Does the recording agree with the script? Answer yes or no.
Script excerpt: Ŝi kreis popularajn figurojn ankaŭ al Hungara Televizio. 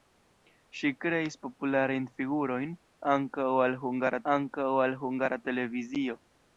no